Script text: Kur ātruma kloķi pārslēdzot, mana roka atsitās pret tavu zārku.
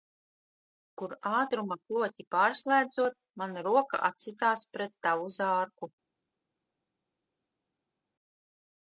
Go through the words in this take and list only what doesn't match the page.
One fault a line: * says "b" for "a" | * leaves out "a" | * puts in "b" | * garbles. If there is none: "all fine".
all fine